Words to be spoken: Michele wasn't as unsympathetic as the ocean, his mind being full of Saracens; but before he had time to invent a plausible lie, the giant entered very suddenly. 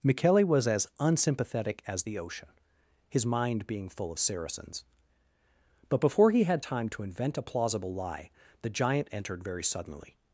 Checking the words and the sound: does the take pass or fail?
fail